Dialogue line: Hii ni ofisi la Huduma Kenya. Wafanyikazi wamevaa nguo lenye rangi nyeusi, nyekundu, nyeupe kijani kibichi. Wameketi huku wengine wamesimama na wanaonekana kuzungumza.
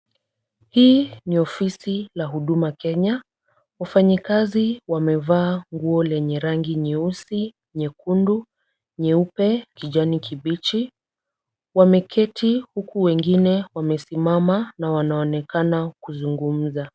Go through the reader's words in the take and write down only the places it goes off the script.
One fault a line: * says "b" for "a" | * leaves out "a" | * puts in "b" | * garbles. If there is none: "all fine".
all fine